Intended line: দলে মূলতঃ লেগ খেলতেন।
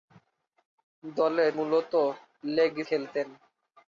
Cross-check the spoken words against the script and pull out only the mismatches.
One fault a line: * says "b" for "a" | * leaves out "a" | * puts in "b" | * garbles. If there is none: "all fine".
all fine